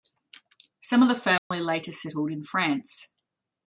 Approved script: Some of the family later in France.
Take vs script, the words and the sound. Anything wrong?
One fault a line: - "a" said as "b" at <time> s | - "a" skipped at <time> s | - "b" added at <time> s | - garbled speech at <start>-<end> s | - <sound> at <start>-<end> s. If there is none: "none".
- dropout at 1.4-1.5 s
- "settled" added at 1.9 s